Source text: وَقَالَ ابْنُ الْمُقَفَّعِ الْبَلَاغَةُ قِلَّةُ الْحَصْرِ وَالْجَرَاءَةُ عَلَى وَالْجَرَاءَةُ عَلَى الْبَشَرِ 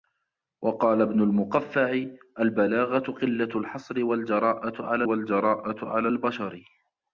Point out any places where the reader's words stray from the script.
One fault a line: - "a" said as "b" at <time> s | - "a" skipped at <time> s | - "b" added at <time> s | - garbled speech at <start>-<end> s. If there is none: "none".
none